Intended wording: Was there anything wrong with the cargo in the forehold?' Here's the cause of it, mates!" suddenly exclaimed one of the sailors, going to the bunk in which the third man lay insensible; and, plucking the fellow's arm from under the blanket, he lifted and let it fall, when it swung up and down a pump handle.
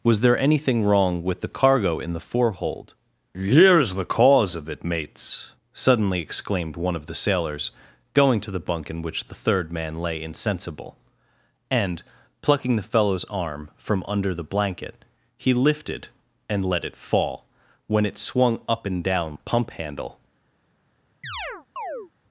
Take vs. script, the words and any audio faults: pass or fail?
fail